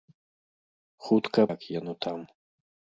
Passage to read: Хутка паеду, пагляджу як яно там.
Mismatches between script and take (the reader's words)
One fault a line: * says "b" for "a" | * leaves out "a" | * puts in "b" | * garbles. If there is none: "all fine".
* leaves out "паеду пагляджу"